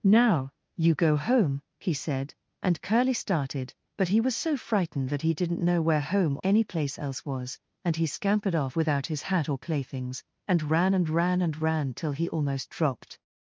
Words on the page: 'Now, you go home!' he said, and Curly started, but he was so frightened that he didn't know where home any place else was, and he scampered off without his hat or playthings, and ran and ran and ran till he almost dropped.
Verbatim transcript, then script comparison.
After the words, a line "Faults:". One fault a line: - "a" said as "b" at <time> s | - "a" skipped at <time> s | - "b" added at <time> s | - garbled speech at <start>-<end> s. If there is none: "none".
'Now, you go home!' he said, and Curly started, but he was so frightened that he didn't know where home any place else was, and he scampered off without his hat or playthings, and ran and ran and ran till he almost dropped.
Faults:
none